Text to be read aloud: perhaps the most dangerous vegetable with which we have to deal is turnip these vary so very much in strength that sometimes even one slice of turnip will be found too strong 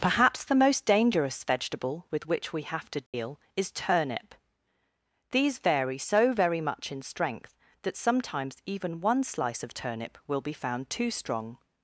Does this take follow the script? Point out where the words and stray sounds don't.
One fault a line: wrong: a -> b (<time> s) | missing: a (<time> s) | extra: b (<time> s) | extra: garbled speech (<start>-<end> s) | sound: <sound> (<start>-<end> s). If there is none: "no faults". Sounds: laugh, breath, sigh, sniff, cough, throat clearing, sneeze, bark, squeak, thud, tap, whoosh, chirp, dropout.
sound: dropout (3.1-3.1 s)